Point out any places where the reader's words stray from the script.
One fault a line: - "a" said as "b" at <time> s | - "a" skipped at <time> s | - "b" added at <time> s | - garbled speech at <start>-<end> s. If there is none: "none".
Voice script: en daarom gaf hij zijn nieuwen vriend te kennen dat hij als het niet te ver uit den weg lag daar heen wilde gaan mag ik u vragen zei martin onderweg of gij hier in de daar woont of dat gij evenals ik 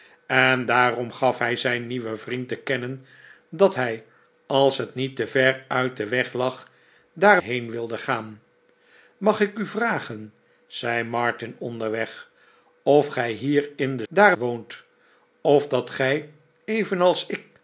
none